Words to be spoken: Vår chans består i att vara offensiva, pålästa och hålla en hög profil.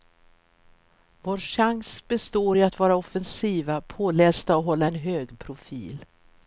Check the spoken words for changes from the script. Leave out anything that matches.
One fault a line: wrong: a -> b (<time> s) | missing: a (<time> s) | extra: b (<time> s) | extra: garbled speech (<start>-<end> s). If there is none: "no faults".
no faults